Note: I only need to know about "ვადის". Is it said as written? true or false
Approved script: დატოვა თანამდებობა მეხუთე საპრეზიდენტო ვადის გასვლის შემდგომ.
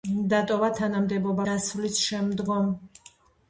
false